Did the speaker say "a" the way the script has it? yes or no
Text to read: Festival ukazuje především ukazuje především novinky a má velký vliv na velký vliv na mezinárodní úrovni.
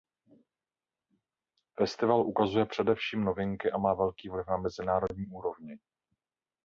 yes